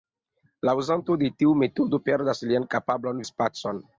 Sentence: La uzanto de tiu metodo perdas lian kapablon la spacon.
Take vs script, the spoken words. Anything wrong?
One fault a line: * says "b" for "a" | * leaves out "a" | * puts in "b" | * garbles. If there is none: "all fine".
all fine